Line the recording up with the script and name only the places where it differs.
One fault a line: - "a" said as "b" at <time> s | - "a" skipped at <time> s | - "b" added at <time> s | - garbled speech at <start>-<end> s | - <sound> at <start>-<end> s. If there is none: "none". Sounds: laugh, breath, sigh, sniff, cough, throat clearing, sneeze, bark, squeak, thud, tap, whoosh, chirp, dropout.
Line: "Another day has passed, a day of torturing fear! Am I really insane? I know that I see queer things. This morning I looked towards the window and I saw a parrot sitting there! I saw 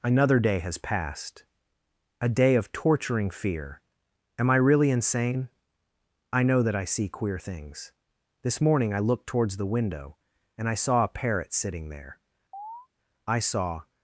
- chirp at 12.5-12.9 s